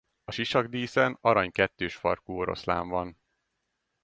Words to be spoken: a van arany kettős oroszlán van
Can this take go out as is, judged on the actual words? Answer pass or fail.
fail